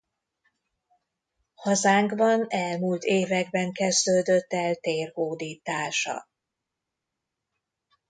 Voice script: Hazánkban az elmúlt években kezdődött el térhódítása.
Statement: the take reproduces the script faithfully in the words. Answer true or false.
false